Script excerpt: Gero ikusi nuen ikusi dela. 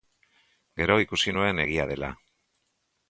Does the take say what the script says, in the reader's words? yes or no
no